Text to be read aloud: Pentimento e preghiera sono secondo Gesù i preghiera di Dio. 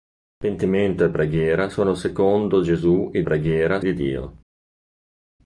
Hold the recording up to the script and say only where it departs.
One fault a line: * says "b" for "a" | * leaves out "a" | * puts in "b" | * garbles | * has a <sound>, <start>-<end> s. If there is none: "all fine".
all fine